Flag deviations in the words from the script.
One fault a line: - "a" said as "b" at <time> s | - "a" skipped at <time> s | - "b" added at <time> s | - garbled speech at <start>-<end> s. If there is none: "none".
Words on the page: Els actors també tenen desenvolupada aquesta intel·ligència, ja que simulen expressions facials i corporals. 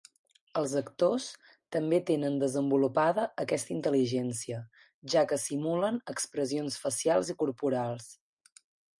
none